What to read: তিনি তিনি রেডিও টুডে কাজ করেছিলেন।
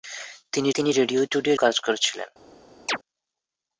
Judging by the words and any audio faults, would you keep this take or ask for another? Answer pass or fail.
fail